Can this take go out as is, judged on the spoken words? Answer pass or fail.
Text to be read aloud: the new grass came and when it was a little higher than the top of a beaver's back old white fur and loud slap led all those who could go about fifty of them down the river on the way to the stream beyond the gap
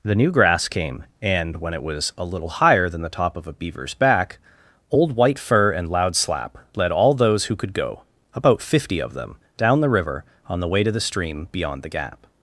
pass